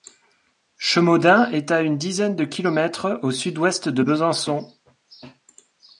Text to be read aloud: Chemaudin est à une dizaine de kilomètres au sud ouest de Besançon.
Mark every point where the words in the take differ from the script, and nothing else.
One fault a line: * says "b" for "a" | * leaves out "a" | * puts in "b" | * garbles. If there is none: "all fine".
all fine